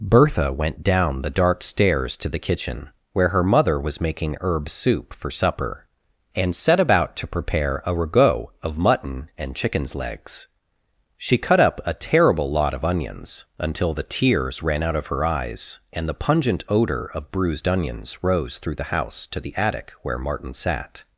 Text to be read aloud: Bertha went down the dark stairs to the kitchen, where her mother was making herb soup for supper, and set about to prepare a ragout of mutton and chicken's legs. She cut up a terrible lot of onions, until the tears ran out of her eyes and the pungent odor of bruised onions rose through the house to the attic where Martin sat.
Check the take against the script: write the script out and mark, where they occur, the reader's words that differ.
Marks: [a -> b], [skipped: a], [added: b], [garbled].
Bertha went down the dark stairs to the kitchen, where her mother was making herb soup for supper, and set about to prepare a ragout of mutton and chicken's legs. She cut up a terrible lot of onions, until the tears ran out of her eyes and the pungent odor of bruised onions rose through the house to the attic where Martin sat.